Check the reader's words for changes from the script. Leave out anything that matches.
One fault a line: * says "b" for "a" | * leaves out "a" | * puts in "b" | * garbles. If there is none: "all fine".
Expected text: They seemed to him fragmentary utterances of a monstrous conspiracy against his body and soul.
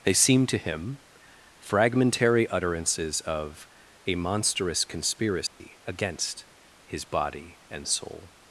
all fine